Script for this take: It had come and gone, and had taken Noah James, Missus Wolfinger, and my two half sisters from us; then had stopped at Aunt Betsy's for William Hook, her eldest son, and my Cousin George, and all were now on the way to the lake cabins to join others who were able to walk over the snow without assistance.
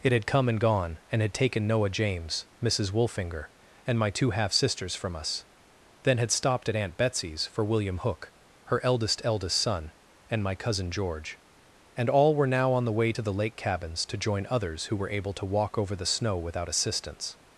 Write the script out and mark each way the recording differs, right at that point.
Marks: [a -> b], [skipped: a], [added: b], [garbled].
It had come and gone, and had taken Noah James, Missus Wolfinger, and my two half sisters from us; then had stopped at Aunt Betsy's for William Hook, her eldest [added: eldest] son, and my Cousin George, and all were now on the way to the lake cabins to join others who were able to walk over the snow without assistance.